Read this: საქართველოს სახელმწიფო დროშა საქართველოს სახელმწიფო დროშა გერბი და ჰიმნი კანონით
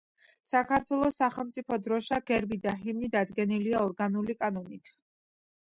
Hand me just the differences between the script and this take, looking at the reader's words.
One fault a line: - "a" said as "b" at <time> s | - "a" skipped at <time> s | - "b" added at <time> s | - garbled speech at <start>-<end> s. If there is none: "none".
- "საქართველოს სახელმწიფო დროშა" skipped at 2.2 s
- "დადგენილია ორგანული" added at 3.2 s